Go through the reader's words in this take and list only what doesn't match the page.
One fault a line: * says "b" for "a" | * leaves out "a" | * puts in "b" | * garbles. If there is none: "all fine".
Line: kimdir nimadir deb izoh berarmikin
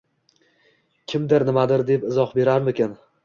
all fine